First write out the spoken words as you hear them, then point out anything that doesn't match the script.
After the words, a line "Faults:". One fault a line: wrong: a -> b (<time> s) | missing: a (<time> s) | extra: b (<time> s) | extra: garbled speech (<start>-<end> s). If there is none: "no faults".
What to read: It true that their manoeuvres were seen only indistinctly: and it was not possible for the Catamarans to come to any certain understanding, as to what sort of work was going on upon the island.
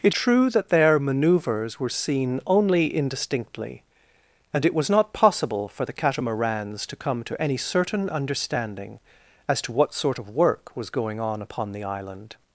It true that their manoeuvres were seen only indistinctly: and it was not possible for the Catamarans to come to any certain understanding, as to what sort of work was going on upon the island.
Faults:
no faults